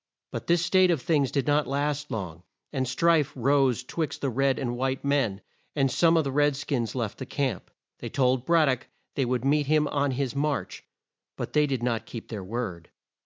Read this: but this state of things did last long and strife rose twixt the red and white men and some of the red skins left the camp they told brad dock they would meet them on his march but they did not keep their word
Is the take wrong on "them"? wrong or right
wrong